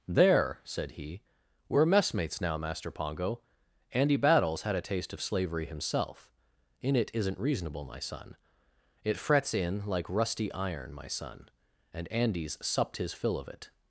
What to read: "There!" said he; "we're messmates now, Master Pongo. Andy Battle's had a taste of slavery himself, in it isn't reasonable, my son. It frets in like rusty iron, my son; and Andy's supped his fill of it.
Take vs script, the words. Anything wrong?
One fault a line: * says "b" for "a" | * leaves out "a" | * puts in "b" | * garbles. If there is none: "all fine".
all fine